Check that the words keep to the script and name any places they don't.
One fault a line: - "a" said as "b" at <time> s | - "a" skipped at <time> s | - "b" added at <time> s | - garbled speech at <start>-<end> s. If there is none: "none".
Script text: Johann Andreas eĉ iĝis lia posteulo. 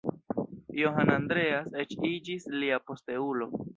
none